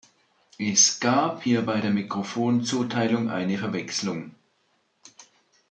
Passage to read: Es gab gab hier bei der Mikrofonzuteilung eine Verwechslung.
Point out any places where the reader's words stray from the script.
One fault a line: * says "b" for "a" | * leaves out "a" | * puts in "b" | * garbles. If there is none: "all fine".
* leaves out "gab"